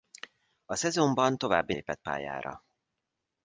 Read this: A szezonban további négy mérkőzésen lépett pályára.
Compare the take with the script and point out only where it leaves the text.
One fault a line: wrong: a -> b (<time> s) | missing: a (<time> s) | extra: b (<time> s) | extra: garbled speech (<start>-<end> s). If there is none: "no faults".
missing: négy mérkőzésen (1.7 s)